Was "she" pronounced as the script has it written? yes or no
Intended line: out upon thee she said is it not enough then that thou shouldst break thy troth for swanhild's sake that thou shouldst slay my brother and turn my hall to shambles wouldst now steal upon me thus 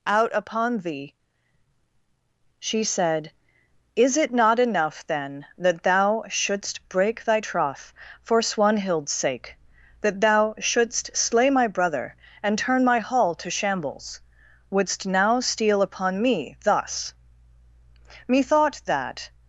yes